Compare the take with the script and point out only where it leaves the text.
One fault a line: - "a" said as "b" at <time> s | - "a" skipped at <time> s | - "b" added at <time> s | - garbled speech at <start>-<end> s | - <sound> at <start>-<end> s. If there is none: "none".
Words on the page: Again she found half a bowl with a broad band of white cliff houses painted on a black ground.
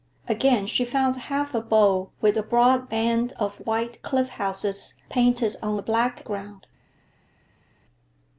none